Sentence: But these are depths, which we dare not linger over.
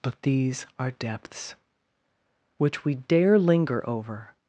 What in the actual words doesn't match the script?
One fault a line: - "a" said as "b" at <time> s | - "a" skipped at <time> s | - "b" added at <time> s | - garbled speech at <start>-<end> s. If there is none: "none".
- "not" skipped at 3.4 s